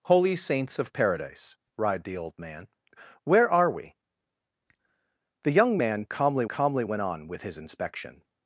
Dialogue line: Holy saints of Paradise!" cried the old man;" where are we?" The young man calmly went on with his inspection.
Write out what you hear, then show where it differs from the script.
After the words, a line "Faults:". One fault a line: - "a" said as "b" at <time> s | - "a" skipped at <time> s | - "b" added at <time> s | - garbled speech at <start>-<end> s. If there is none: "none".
Holy saints of Paradise!" cried the old man;" where are we?" The young man calmly calmly went on with his inspection.
Faults:
- "calmly" added at 6.4 s